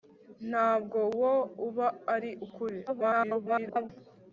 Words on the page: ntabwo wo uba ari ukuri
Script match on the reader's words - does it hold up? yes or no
no